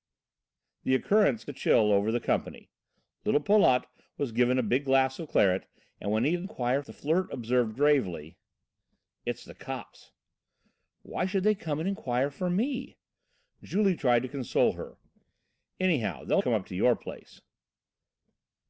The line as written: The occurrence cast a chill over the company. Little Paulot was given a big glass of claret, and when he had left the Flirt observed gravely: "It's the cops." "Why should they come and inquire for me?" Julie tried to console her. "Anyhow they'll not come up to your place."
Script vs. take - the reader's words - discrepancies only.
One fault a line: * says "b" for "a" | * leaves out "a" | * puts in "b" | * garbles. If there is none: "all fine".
* leaves out "cast"
* says "inquire" for "left"
* leaves out "not"